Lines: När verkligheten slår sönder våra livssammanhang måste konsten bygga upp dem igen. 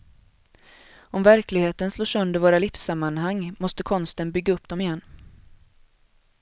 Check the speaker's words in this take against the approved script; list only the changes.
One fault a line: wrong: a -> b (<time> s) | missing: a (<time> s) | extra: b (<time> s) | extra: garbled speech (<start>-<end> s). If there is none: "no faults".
wrong: När -> Om (1.0 s)